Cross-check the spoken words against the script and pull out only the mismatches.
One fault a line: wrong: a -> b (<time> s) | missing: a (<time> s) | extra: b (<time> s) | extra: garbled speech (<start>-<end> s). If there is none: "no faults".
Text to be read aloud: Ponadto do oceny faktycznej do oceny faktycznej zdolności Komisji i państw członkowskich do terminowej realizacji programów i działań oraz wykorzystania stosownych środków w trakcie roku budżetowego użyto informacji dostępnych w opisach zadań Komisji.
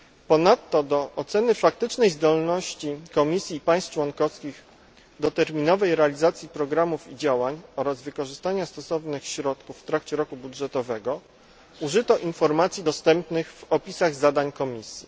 missing: do oceny faktycznej (2.1 s)